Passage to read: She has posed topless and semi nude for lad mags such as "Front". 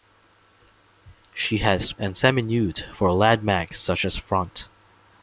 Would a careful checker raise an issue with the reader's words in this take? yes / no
yes